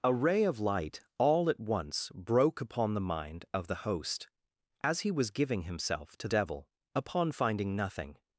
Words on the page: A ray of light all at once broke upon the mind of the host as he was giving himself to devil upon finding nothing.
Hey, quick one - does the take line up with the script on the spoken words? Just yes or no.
yes